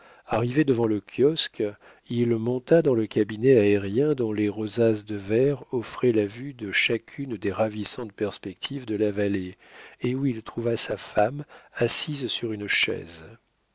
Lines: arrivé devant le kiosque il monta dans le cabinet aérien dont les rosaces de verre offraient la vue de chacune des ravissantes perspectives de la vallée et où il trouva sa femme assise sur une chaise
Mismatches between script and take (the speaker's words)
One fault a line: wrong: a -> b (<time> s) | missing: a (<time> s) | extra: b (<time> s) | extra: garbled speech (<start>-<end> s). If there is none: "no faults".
no faults